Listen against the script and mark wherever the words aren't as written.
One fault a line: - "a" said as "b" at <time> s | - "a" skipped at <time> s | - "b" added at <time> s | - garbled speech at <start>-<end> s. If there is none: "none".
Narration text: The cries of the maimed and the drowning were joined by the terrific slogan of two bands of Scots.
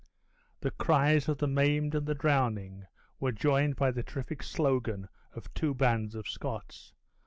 none